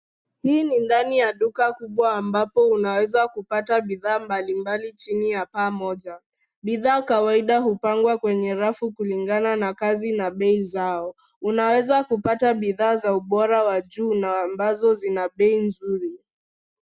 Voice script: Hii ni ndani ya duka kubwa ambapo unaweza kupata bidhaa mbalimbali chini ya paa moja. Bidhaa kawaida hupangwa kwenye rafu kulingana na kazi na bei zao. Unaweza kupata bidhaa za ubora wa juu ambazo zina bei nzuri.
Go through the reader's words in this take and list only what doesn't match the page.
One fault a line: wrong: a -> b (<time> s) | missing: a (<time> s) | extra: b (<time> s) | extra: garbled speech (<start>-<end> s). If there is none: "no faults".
extra: na (14.1 s)